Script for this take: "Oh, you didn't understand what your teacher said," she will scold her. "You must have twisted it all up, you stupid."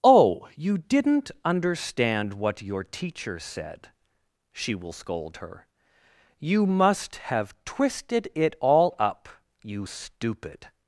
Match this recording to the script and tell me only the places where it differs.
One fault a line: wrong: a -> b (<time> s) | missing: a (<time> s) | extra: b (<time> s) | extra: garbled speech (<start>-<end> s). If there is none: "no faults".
no faults